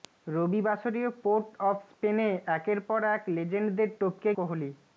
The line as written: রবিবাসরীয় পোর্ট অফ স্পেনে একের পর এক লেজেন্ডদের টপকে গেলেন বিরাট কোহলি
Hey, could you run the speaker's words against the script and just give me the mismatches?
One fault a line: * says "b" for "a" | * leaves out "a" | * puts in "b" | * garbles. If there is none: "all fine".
* leaves out "গেলেন বিরাট"